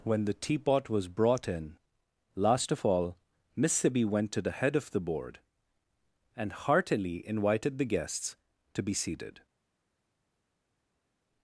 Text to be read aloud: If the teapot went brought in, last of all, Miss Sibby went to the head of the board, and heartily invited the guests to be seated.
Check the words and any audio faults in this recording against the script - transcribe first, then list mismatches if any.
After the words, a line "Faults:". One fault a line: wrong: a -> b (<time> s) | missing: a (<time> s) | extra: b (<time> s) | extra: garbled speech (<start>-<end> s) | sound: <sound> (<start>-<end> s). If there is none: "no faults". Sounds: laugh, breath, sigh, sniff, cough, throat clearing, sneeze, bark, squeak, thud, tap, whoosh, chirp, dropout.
When the teapot was brought in, last of all, Miss Sibby went to the head of the board, and heartily invited the guests to be seated.
Faults:
wrong: If -> When (0.0 s)
wrong: went -> was (0.9 s)